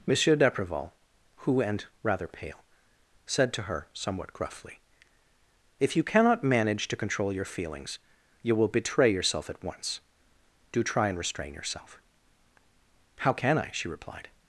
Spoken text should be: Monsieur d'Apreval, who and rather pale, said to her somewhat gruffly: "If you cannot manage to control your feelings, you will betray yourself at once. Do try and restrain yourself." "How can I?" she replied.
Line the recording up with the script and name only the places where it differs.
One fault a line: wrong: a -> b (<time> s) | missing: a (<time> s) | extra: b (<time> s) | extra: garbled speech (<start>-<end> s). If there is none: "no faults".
no faults